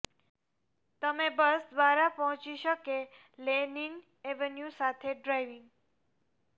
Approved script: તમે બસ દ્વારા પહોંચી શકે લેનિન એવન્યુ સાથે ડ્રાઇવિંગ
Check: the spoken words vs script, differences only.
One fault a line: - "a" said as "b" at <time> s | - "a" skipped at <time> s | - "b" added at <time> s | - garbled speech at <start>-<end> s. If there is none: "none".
none